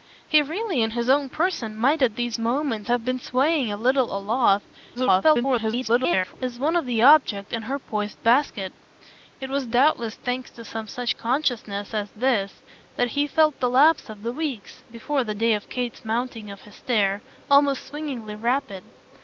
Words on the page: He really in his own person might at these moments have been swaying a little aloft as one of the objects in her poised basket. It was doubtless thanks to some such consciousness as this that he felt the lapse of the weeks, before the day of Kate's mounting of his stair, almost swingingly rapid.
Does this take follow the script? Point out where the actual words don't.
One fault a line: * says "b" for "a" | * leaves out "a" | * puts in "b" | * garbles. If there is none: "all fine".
* garbles